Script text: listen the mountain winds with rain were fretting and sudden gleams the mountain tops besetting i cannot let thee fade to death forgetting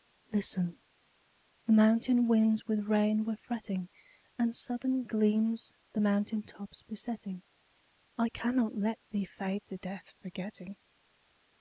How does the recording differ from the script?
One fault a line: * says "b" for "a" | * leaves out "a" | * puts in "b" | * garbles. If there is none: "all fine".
all fine